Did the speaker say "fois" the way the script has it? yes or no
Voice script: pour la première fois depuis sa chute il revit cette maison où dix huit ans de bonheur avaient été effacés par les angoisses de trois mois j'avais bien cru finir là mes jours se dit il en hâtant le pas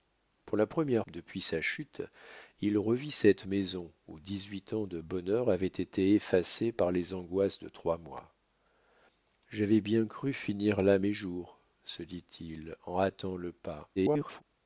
no